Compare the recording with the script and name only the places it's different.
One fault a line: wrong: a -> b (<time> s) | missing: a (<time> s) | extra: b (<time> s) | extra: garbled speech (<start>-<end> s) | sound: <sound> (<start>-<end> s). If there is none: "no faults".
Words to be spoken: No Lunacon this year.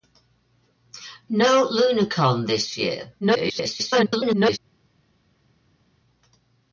extra: garbled speech (3.2-4.6 s)